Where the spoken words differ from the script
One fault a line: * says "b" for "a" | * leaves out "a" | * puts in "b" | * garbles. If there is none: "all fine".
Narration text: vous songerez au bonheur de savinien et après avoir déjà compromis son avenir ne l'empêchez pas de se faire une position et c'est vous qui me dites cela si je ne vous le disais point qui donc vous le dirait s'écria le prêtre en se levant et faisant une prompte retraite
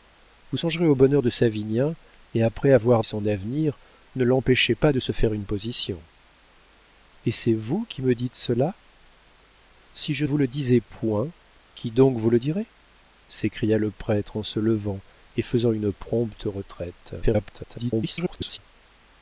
* leaves out "déjà compromis"
* leaves out "ne"
* garbles